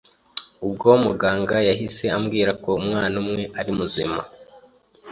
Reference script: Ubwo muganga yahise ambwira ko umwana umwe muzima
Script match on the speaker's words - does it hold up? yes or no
no